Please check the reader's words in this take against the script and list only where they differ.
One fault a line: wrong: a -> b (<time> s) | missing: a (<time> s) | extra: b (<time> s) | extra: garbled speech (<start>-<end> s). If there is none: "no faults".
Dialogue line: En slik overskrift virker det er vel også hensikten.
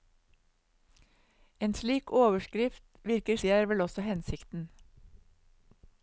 no faults